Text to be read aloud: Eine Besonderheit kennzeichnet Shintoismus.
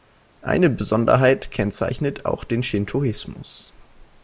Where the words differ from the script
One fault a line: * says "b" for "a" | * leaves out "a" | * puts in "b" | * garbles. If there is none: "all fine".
* puts in "auch den"